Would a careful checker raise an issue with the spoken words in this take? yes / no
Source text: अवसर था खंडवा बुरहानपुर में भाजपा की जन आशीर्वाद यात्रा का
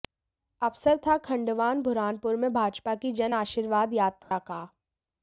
no